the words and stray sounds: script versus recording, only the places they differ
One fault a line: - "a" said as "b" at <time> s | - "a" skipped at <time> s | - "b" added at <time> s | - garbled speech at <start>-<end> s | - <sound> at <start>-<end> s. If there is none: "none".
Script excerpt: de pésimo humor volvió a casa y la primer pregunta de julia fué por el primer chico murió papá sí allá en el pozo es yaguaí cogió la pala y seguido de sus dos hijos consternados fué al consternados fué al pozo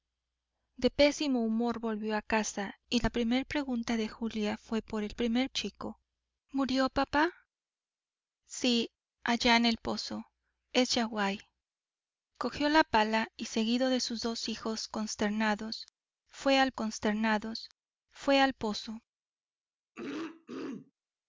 - throat clearing at 20.0-20.9 s